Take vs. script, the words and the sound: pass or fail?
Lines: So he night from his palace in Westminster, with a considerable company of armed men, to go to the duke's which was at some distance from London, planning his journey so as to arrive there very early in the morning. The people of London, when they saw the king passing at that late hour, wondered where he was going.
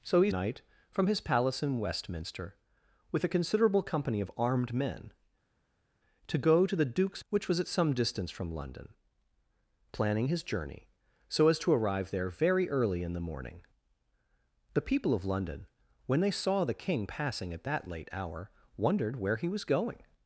pass